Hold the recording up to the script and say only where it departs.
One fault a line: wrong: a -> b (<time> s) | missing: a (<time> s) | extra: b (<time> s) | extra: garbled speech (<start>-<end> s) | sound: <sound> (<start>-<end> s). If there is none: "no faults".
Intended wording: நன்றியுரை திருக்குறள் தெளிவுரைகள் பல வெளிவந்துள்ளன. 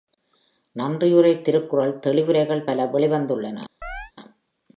sound: chirp (3.8-4.1 s)